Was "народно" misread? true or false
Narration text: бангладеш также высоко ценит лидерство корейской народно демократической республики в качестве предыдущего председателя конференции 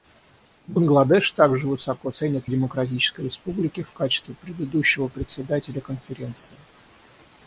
true